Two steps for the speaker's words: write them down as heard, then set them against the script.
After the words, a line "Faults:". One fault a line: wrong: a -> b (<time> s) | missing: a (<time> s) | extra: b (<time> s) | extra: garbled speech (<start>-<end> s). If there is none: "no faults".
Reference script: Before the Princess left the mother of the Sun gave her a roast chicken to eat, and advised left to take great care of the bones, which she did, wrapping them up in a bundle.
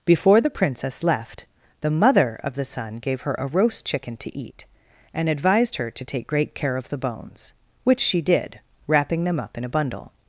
Before the Princess left the mother of the Sun gave her a roast chicken to eat, and advised her to take great care of the bones, which she did, wrapping them up in a bundle.
Faults:
wrong: left -> her (5.8 s)